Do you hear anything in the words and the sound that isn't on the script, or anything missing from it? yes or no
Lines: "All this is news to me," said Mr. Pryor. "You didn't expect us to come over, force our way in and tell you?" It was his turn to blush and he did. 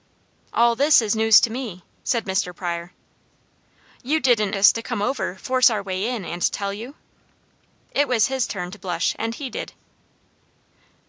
yes